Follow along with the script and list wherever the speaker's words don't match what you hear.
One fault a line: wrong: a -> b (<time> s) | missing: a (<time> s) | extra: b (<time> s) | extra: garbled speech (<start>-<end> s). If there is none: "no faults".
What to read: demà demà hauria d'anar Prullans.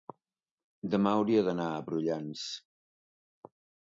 missing: demà (1.1 s)
extra: a (1.7 s)